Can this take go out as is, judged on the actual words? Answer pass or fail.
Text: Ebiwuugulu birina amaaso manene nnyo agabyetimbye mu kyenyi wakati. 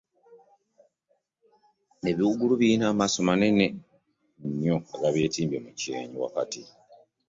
pass